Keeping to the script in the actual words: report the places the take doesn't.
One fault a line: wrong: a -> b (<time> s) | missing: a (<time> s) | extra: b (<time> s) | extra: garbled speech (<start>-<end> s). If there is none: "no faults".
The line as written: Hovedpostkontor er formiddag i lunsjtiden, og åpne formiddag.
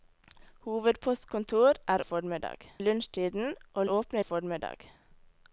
no faults